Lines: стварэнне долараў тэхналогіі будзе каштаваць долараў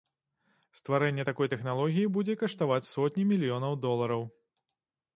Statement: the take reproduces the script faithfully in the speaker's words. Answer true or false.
false